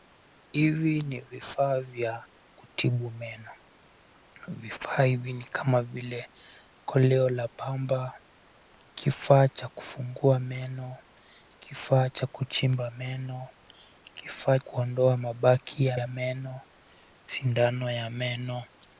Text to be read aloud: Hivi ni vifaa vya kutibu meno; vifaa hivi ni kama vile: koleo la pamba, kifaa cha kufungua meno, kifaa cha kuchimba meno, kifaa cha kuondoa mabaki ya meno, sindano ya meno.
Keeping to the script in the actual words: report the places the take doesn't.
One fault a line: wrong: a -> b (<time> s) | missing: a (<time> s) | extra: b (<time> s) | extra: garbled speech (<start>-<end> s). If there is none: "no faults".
missing: cha (14.6 s)
extra: ya (15.9 s)